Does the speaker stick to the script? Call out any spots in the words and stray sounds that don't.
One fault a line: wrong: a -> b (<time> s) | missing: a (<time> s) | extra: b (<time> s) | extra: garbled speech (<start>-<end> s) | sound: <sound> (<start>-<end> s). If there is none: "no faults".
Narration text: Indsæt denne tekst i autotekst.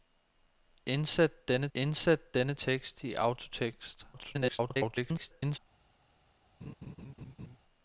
extra: indsæt denne (1.7 s)
extra: garbled speech (4.1-5.6 s)
sound: laugh (6.6-7.6 s)